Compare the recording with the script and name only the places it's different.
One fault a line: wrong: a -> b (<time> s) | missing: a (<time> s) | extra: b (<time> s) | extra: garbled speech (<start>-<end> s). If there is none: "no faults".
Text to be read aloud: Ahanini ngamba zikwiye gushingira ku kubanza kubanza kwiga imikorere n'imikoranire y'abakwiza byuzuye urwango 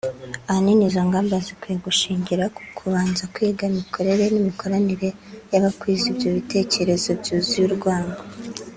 extra: izo (0.9 s)
missing: kubanza (3.2 s)
extra: ibyo bitekerezo (6.1 s)